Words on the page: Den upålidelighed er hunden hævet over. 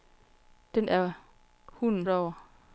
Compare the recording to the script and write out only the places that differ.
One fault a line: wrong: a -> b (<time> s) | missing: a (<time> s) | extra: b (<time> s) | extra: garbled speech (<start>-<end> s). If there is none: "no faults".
missing: upålidelighed (0.9 s)
missing: hævet (2.1 s)